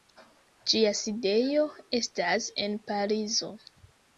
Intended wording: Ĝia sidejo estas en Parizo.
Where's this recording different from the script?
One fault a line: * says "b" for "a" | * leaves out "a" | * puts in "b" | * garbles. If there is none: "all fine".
all fine